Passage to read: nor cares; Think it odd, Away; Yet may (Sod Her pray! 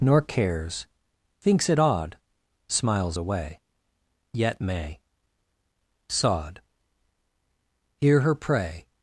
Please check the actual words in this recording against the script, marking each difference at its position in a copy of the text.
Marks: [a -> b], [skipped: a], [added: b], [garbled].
nor cares; [Think -> Thinks] it odd, [added: Smiles] Away; Yet may (Sod [added: Hear] Her pray!